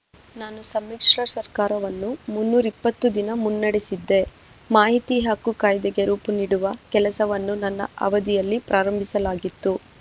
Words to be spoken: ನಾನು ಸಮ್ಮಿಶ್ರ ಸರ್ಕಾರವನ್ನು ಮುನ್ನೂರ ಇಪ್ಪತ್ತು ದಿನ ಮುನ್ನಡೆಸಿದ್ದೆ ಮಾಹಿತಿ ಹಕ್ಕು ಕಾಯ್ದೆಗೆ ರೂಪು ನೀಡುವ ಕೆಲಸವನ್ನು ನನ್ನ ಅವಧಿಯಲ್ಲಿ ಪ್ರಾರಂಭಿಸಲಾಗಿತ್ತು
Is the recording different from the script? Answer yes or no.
no